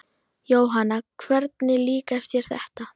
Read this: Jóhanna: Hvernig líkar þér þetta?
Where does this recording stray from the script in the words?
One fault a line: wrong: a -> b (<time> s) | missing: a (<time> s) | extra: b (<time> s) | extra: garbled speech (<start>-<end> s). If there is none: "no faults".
no faults